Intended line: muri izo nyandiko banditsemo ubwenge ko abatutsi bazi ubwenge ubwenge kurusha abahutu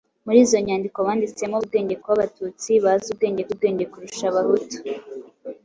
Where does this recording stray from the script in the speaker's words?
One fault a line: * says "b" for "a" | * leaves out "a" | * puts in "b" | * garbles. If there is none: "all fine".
all fine